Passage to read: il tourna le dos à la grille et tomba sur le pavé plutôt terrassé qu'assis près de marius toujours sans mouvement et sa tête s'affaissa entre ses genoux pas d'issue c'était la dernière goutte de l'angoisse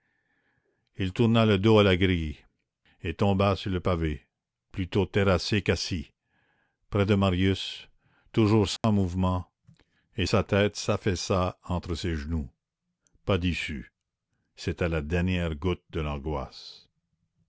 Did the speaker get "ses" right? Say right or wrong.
right